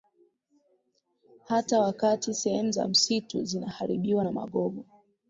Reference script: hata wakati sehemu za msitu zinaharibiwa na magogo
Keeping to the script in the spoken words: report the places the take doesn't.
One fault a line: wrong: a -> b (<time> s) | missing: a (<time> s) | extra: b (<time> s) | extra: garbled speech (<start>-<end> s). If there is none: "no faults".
no faults